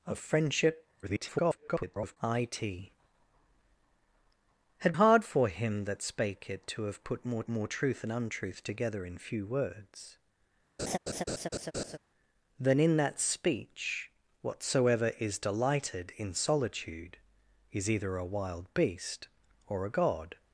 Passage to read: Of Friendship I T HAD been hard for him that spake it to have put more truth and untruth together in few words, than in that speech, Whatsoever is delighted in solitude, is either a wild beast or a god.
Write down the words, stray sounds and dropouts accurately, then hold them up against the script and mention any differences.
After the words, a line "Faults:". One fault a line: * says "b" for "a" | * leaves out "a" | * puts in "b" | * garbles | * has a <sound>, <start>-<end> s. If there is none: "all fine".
Of Friendship [garbled] I T HAD hard for him that spake it to have put more more truth and untruth together in few words, than in that speech, Whatsoever is delighted in solitude, is either a wild beast or a god.
Faults:
* garbles
* leaves out "been"
* puts in "more"
* has a laugh, 10.8-12.0 s